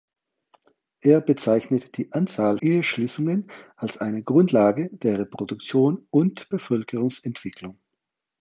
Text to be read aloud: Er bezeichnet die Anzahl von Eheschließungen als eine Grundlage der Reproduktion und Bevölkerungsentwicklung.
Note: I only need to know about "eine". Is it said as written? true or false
true